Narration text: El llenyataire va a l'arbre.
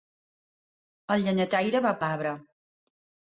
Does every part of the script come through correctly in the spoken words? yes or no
yes